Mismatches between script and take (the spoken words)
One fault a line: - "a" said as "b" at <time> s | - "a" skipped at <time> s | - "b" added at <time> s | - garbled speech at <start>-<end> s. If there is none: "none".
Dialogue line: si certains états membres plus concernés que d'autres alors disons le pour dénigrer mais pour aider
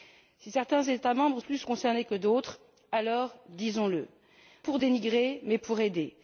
none